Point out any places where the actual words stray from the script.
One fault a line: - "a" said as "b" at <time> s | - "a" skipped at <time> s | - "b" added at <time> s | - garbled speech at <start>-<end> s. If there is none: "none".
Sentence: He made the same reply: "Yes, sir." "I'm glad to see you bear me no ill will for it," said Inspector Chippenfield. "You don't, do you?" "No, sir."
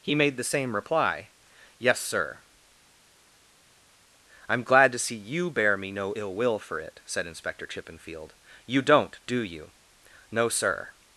none